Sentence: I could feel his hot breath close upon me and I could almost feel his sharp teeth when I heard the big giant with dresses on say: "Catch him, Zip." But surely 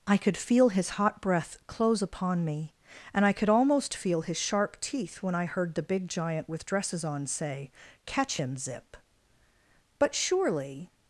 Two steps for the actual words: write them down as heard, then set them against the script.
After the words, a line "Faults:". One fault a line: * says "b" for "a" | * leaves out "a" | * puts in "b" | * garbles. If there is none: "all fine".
I could feel his hot breath close upon me and I could almost feel his sharp teeth when I heard the big giant with dresses on say: "Catch him, Zip." But surely
Faults:
all fine